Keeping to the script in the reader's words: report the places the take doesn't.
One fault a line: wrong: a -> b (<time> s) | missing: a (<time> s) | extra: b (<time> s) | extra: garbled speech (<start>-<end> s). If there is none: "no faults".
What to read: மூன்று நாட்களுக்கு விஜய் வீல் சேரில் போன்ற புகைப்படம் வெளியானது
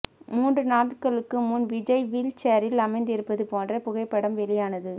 extra: முன் (1.5 s)
extra: அமர்ந்திருப்பது (2.9 s)